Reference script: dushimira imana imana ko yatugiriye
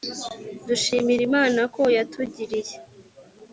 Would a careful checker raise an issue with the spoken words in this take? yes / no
yes